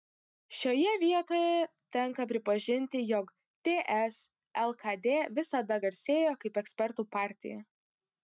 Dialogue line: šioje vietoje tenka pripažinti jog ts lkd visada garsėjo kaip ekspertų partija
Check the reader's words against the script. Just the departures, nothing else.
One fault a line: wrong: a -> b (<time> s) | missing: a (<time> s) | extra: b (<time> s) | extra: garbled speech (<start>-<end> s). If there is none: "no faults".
no faults